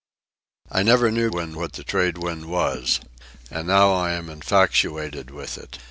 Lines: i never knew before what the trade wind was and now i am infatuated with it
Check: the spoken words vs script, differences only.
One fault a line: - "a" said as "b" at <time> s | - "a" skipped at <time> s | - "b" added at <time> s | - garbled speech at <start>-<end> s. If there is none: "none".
- "before" said as "wind" at 1.3 s